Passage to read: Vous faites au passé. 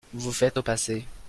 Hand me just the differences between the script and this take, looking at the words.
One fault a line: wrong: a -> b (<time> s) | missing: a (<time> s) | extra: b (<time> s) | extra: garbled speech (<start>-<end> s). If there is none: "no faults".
no faults